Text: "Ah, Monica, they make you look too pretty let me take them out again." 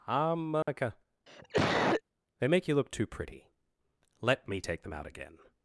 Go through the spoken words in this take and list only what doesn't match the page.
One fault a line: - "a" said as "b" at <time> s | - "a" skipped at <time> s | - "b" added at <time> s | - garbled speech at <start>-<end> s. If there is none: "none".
none